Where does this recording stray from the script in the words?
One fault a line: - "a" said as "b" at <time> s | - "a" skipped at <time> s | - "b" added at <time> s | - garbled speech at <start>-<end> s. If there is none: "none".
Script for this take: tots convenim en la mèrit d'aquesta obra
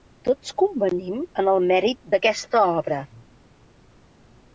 - "la" said as "el" at 1.5 s